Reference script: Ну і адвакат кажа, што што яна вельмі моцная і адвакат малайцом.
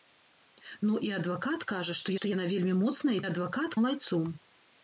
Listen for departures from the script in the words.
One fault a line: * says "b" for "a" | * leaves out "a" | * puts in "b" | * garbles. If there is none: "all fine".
all fine